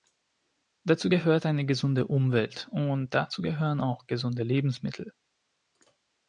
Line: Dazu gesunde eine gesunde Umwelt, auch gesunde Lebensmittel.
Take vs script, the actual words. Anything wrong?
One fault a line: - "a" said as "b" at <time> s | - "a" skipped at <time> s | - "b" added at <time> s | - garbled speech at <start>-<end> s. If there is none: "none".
- "gesunde" said as "gehört" at 1.1 s
- "und dazu gehören" added at 2.7 s